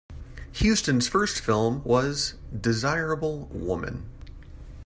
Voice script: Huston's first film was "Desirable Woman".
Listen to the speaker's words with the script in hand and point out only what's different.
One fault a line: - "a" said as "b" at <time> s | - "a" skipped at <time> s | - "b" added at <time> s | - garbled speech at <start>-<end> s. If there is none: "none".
none